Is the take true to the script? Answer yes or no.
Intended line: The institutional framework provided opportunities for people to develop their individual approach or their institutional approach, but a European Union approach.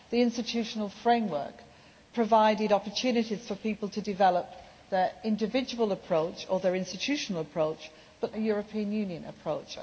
yes